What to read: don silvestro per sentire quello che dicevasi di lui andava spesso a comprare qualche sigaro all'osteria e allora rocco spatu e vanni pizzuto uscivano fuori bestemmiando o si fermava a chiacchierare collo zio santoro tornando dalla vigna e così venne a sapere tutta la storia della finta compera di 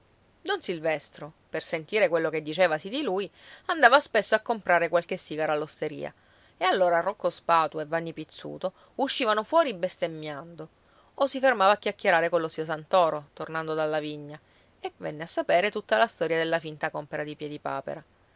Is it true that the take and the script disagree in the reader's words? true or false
true